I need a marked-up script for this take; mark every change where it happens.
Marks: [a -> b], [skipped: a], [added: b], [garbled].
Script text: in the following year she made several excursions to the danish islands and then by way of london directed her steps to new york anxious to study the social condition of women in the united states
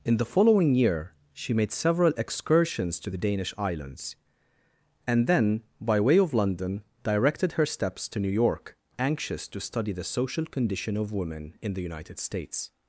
in the following year she made several excursions to the danish islands and then by way of london directed her steps to new york anxious to study the social condition of women in the united states